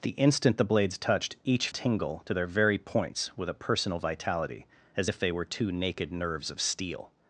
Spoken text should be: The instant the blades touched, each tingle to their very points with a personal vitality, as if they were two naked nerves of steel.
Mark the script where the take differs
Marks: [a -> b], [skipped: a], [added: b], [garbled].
The instant the blades touched, each tingle to their very points with a personal vitality, as if they were two naked nerves of steel.